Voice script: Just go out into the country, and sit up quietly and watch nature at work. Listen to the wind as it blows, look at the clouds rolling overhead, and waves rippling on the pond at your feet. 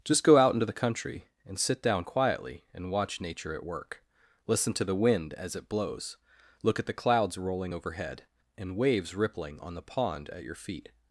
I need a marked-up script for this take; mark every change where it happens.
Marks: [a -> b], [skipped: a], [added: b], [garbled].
Just go out into the country, and sit [up -> down] quietly and watch nature at work. Listen to the wind as it blows, look at the clouds rolling overhead, and waves rippling on the pond at your feet.